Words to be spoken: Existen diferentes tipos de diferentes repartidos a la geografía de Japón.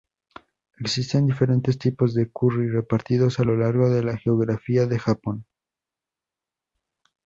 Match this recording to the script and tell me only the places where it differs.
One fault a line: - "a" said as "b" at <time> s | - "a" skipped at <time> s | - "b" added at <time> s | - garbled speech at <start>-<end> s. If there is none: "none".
- "diferentes" said as "curry" at 2.3 s
- "lo largo de" added at 3.4 s